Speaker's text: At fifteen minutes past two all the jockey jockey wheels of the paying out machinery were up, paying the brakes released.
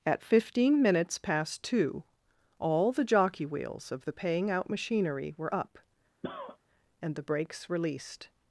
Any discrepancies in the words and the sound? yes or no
yes